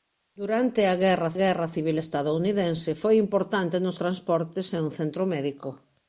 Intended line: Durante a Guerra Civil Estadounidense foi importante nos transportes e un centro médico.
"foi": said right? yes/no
yes